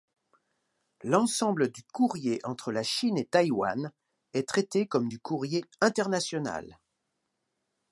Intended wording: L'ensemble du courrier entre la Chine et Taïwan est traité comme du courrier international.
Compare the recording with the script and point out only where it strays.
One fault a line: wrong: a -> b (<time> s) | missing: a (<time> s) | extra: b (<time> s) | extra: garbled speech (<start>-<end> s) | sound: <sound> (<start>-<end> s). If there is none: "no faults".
no faults